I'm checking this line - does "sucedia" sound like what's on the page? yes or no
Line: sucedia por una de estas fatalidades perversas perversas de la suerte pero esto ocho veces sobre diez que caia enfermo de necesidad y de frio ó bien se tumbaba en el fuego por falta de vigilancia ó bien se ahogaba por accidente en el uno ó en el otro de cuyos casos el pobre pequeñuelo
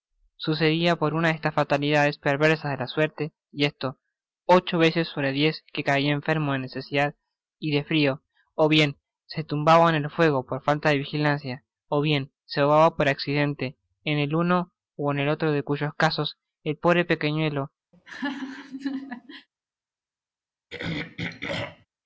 yes